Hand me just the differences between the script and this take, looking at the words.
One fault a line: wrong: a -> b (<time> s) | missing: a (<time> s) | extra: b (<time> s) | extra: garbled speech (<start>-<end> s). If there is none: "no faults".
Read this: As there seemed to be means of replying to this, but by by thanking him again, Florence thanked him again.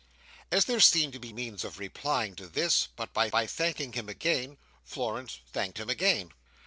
no faults